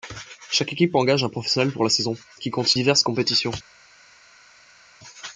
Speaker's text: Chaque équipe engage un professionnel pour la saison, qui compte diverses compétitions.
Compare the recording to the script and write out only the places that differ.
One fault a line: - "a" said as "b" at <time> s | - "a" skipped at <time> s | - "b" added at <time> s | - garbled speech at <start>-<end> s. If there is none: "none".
none